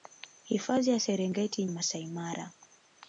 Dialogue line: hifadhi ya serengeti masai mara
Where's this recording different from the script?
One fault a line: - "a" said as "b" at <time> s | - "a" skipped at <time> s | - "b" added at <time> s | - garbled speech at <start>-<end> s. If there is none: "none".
none